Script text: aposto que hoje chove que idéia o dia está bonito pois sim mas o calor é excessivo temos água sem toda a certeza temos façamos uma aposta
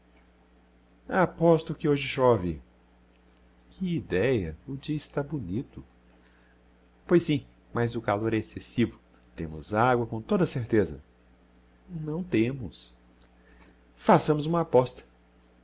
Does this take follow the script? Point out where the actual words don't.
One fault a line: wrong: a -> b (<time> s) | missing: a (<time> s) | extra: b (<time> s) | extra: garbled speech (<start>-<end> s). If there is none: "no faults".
wrong: sem -> com (10.0 s)
extra: não (11.9 s)